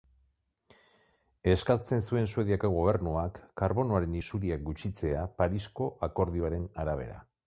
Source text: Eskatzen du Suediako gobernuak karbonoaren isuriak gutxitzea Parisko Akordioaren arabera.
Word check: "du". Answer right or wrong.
wrong